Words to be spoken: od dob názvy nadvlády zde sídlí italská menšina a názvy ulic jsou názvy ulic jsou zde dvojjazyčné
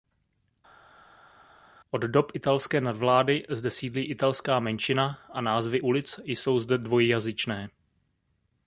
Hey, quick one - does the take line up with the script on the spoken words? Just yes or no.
no